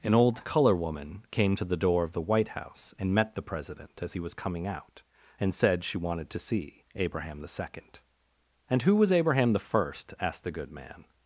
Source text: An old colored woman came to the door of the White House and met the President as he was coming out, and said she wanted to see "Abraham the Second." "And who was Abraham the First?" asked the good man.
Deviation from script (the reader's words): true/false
true